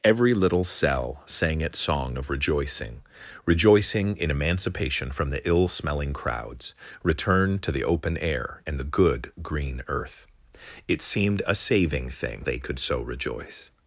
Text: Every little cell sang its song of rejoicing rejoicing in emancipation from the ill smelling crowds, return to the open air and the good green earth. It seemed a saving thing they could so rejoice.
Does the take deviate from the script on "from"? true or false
false